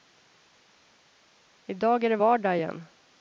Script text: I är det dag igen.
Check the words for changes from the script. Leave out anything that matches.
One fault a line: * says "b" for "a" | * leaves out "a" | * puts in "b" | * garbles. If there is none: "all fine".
* puts in "dag"
* says "vardag" for "dag"